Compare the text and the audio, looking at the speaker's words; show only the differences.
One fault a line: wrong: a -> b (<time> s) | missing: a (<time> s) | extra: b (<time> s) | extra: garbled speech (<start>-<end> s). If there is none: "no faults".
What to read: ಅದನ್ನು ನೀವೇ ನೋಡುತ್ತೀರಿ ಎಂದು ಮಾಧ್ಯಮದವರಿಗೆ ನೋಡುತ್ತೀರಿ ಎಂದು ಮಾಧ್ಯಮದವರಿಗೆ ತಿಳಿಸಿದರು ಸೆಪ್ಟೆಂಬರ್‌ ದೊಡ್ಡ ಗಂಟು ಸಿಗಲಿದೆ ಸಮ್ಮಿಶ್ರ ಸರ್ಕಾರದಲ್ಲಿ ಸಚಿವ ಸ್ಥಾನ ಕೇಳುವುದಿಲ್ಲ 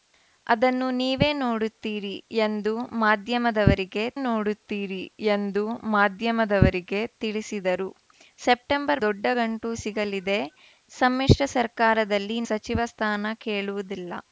no faults